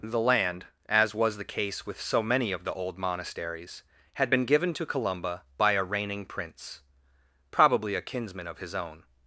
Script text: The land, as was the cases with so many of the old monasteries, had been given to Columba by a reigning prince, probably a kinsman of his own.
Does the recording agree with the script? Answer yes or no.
no